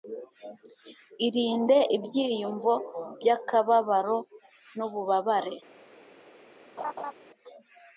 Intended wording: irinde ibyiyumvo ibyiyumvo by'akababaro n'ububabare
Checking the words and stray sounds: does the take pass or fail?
fail